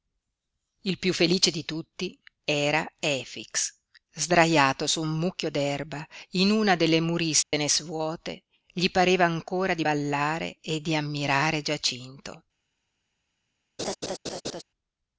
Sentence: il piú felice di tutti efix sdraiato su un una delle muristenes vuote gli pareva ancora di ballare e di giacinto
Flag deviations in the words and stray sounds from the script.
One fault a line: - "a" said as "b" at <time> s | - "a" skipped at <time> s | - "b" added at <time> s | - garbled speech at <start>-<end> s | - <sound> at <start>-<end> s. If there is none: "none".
- "era" added at 2.4 s
- "mucchio d'erba in" added at 5.2 s
- dropout at 7.4-7.5 s
- "ammirare" added at 10.9 s
- laugh at 13.8-14.6 s